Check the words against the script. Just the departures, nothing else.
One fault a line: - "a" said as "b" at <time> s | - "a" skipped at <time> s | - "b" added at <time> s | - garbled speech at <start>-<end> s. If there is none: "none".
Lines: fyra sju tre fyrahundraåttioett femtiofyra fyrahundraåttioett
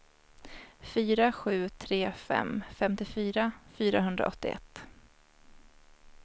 - "fyrahundraåttioett" said as "fem" at 2.1 s